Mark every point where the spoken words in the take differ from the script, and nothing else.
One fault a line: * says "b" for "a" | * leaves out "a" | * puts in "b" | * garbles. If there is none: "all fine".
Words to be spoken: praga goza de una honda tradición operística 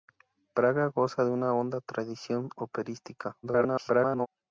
* garbles